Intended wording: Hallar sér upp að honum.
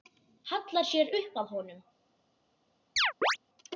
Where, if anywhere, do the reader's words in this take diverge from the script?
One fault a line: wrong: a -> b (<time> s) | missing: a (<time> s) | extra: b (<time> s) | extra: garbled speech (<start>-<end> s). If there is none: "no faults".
no faults